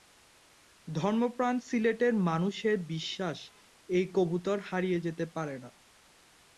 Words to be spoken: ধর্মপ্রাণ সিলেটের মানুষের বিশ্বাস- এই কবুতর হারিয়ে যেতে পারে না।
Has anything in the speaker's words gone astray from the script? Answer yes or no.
no